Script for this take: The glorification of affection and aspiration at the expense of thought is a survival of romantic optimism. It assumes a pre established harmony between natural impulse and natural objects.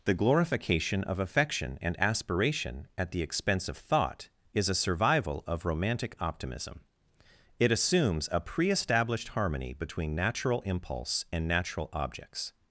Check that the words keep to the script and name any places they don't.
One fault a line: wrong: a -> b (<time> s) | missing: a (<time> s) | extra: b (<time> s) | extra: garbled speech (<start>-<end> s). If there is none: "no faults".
no faults